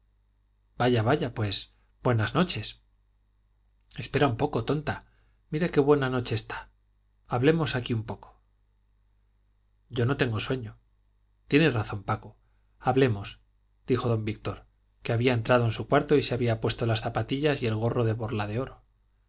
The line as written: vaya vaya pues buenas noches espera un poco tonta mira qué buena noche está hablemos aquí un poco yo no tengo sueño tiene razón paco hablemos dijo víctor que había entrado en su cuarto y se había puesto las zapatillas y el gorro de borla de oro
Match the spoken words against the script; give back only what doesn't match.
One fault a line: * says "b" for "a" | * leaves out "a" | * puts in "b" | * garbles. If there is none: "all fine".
* puts in "don"